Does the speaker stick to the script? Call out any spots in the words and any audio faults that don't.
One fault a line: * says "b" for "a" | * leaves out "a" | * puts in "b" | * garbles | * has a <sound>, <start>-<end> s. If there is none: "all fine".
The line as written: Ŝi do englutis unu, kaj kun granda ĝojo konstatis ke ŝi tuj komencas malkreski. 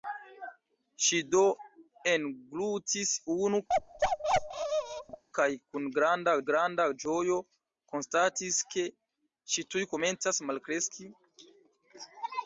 * has a bark, 3.7-5.2 s
* puts in "granda"